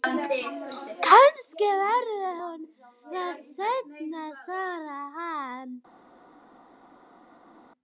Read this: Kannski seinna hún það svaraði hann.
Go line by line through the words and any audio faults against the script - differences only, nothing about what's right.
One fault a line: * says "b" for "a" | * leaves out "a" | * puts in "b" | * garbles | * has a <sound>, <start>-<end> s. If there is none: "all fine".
* says "verður" for "seinna"
* puts in "seinna"